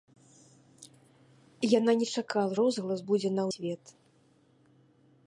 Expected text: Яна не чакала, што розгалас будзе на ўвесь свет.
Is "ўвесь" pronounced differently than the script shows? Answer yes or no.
yes